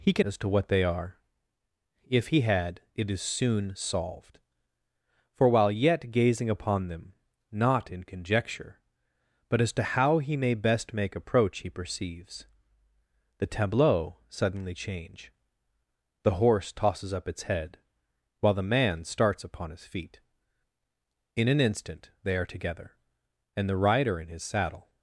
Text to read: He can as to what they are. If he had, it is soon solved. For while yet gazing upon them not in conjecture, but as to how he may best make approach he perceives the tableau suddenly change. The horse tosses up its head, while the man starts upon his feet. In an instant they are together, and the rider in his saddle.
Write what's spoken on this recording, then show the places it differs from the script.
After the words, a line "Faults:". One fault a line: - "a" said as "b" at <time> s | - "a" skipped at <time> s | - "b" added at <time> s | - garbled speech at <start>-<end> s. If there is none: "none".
He can as to what they are. If he had, it is soon solved. For while yet gazing upon them not in conjecture, but as to how he may best make approach he perceives the tableau suddenly change. The horse tosses up its head, while the man starts upon his feet. In an instant they are together, and the rider in his saddle.
Faults:
none